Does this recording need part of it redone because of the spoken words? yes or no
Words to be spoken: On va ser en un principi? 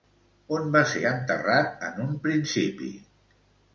yes